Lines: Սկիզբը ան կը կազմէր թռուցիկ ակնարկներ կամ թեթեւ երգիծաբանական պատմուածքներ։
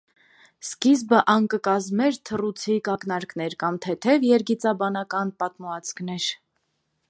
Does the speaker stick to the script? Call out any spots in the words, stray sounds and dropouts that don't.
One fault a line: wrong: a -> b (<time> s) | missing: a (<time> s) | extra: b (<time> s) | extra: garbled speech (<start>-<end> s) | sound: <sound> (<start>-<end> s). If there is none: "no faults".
no faults